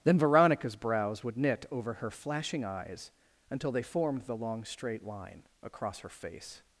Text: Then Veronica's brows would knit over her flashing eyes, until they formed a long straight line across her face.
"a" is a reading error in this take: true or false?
true